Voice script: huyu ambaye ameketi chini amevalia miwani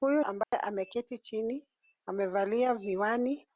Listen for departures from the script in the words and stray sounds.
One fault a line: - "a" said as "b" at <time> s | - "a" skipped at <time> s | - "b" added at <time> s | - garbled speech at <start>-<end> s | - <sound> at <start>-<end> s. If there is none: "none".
- dropout at 0.4-0.5 s